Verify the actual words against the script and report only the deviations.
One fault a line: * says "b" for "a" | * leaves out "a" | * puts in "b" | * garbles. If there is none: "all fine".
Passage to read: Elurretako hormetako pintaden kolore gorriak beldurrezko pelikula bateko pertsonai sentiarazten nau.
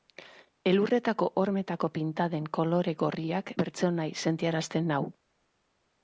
* leaves out "beldurrezko pelikula bateko"